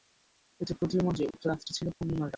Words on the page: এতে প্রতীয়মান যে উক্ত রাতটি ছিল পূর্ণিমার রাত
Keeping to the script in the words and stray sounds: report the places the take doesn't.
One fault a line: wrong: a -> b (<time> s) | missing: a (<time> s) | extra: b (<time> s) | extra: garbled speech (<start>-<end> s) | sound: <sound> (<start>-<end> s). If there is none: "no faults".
sound: dropout (1.3-1.3 s)
sound: dropout (1.9-2.0 s)